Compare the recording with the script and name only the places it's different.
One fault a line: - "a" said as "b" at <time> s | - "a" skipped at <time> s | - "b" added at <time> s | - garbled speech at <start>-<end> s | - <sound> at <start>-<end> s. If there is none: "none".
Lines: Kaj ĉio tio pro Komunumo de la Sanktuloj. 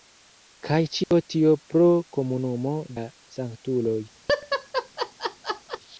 - dropout at 1.0-1.1 s
- "de" skipped at 2.8 s
- laugh at 4.3-5.8 s